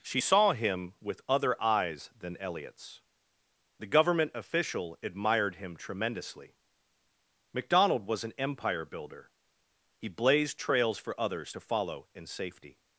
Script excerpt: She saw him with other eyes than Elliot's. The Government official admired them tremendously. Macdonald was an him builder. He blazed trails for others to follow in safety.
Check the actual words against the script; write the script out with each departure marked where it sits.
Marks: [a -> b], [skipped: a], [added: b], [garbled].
She saw him with other eyes than Elliot's. The Government official admired [them -> him] tremendously. Macdonald was an [him -> empire] builder. He blazed trails for others to follow in safety.